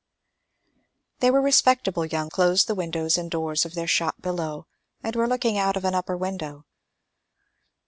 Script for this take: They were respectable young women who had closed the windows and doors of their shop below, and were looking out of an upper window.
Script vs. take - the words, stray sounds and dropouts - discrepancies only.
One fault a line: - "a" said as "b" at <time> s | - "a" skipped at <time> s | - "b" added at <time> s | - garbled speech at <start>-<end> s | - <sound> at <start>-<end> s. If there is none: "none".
- "women who had" skipped at 2.3 s